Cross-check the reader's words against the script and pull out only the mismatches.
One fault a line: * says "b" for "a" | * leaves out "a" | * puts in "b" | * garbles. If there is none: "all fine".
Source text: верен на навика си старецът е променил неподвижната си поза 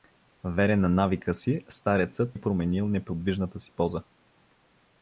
all fine